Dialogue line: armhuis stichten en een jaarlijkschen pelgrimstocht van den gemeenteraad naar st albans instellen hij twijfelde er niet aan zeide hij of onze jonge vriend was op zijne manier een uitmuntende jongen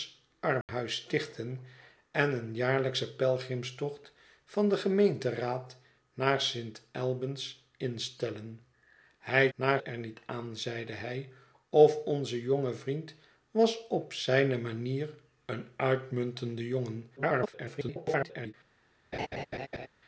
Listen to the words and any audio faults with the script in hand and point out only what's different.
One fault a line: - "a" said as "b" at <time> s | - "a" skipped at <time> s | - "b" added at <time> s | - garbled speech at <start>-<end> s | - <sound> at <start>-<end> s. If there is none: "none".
- dropout at 0.6-0.7 s
- "twijfelde" said as "naar" at 9.5 s
- garbled speech at 17.2-18.5 s
- laugh at 19.1-19.9 s